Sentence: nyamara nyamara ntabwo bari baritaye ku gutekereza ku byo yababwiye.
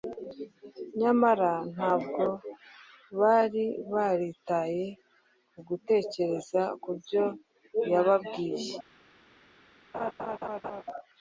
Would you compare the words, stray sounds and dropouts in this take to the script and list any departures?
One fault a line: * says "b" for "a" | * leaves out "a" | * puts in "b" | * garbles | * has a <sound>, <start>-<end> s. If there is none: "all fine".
* leaves out "nyamara"
* has a laugh, 9.9-10.8 s